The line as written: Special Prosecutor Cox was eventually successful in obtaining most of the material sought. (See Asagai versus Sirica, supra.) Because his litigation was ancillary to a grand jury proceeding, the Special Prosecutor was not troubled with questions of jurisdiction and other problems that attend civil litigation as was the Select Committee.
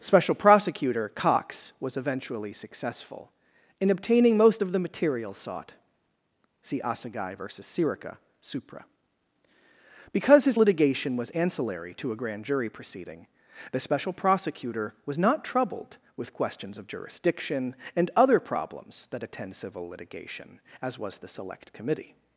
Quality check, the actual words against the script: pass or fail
pass